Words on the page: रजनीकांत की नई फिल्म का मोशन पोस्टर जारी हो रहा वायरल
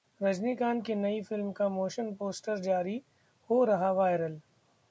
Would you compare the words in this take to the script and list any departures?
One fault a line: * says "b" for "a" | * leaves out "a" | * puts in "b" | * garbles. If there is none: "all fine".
all fine